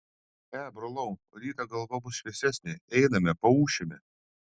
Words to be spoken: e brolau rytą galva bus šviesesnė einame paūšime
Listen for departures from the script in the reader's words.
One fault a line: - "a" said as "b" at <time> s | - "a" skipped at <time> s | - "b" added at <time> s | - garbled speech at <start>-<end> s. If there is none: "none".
none